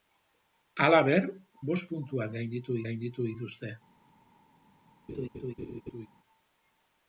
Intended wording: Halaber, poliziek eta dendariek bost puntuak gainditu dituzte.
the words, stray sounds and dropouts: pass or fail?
fail